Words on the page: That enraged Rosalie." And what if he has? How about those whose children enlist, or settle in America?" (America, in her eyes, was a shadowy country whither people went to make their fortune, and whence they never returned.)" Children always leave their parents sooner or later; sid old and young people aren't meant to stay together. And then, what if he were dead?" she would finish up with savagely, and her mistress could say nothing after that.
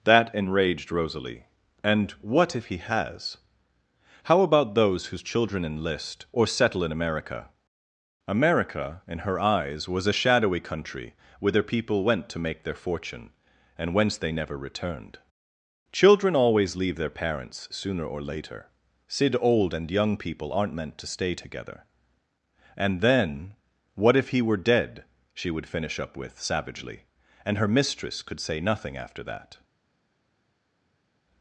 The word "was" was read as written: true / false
true